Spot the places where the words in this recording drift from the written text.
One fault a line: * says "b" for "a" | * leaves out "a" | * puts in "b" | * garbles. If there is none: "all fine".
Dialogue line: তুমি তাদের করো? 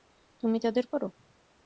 all fine